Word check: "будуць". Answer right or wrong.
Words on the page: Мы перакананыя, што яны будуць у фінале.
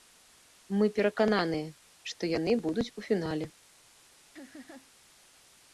right